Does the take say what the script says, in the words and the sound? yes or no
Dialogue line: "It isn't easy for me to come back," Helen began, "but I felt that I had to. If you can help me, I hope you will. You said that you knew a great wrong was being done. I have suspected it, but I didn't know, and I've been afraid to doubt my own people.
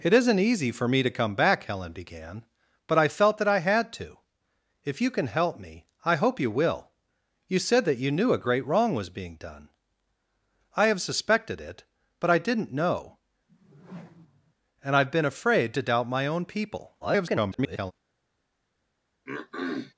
no